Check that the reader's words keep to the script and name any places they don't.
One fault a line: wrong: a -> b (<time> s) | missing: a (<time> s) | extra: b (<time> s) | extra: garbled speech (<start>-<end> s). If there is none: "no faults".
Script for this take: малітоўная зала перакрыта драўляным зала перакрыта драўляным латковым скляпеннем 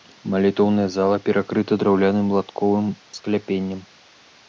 missing: зала перакрыта драўляным (2.3 s)